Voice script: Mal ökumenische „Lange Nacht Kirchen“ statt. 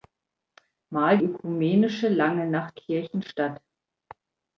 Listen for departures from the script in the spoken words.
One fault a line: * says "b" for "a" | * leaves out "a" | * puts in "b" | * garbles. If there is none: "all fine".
all fine